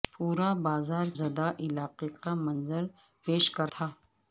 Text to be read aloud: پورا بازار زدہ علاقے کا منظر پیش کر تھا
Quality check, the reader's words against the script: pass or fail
pass